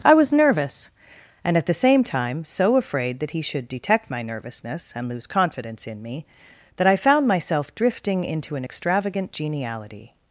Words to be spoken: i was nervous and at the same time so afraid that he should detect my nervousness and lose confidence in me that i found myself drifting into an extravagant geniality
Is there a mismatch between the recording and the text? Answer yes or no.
no